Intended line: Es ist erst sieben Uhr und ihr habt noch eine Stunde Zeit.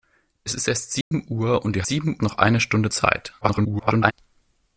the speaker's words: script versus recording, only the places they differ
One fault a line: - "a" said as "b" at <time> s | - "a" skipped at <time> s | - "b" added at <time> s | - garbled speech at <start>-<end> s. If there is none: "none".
- "habt" said as "sieben" at 1.9 s
- garbled speech at 3.4-4.1 s